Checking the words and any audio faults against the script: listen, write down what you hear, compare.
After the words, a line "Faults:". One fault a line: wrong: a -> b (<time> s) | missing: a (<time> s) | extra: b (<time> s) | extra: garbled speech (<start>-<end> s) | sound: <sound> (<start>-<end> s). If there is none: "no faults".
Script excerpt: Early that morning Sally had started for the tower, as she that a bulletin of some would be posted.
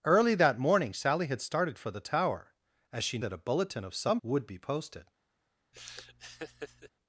Early that morning Sally had started for the tower, as she that a bulletin of some would be posted.
Faults:
sound: laugh (5.7-6.9 s)